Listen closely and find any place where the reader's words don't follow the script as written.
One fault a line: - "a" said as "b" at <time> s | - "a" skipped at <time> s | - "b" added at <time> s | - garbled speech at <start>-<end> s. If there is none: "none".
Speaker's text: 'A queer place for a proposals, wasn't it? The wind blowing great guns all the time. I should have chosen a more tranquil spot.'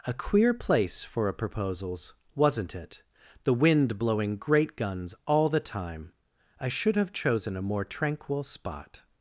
none